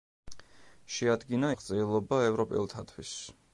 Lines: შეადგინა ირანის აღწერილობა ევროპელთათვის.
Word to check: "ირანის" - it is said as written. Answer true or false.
false